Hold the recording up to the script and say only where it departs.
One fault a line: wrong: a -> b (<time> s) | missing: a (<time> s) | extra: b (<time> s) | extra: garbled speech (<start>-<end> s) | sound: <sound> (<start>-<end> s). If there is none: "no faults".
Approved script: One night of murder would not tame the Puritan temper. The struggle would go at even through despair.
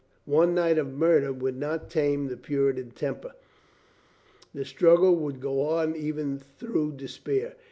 wrong: at -> on (5.6 s)